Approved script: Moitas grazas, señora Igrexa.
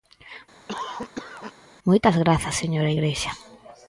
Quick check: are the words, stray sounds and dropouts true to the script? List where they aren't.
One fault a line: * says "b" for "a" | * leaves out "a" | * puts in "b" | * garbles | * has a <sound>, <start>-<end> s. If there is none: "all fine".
* has a cough, 0.7-1.5 s